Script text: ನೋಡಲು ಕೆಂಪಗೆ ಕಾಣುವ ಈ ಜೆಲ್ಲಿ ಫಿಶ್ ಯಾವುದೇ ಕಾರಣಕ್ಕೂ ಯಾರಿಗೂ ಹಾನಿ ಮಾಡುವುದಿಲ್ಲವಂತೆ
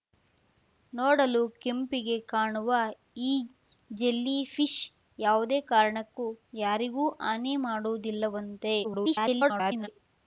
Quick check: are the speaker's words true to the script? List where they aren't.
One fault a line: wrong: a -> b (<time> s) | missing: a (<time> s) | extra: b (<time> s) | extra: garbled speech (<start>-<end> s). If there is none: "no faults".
extra: garbled speech (8.8-9.9 s)